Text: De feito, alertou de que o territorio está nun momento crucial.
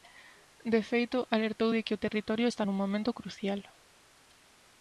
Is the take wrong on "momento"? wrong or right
right